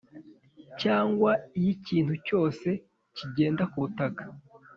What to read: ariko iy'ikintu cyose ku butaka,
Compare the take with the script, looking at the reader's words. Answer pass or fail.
fail